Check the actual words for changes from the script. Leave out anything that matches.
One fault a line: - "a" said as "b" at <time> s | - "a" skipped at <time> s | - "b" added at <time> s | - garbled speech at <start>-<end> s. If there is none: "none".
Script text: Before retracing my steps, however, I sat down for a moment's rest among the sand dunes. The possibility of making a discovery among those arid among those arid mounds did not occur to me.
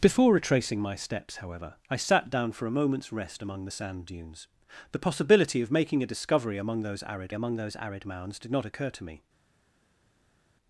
none